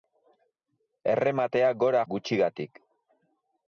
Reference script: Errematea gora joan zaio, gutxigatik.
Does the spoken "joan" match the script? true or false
false